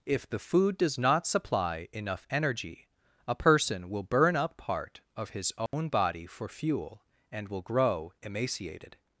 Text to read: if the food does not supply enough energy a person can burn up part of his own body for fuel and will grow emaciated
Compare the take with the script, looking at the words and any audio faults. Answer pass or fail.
fail